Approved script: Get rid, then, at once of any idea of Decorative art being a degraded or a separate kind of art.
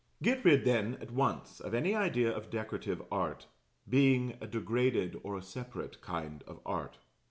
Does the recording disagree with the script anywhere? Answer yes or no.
no